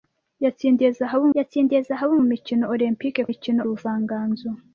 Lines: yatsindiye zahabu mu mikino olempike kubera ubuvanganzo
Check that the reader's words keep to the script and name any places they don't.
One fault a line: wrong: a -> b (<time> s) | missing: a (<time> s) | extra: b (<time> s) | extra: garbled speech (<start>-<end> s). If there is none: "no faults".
extra: yatsindiye zahabu (1.4 s)
wrong: kubera -> mikino (3.3 s)